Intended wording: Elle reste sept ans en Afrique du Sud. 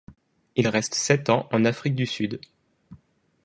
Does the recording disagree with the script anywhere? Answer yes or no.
yes